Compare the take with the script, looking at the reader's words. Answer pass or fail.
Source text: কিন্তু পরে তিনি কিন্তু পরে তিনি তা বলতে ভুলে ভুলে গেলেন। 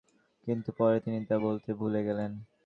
fail